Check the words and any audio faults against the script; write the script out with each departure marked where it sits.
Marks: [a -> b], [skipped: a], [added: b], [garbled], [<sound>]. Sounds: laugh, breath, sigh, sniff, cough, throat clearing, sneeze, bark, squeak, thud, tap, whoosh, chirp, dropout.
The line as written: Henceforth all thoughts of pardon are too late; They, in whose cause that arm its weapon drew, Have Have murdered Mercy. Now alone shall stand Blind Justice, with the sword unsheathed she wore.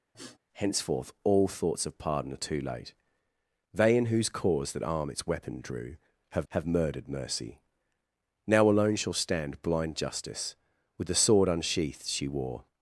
[sniff] Henceforth all thoughts of pardon are too late; They, in whose cause that arm its weapon drew, Have Have murdered Mercy. Now alone shall stand Blind Justice, with the sword unsheathed she wore.